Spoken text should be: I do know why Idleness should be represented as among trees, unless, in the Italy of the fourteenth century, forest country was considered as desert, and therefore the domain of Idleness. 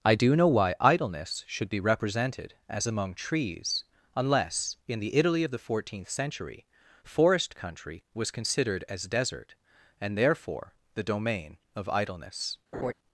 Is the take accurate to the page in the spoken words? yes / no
yes